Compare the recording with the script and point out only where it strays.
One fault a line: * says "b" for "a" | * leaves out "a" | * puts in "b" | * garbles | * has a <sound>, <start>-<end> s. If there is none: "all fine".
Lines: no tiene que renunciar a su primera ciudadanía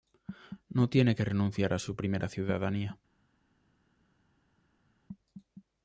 all fine